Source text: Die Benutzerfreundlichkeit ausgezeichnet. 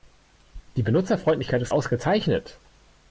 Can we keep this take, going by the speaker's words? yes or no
no